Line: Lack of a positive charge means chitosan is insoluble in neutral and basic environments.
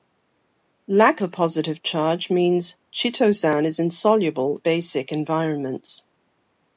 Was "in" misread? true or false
true